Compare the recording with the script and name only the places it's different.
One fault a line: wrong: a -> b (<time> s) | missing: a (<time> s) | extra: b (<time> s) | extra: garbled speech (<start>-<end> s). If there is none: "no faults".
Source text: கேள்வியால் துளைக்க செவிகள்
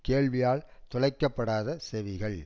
extra: படாத (1.3 s)